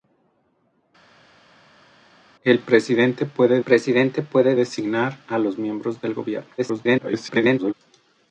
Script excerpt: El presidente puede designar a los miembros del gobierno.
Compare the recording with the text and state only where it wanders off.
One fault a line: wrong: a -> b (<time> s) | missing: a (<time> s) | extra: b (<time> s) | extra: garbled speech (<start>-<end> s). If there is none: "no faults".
extra: presidente puede (3.6 s)
extra: garbled speech (6.6-7.7 s)